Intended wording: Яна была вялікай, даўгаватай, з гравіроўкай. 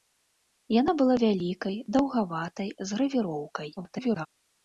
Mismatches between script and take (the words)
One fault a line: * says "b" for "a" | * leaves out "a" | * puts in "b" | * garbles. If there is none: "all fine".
* garbles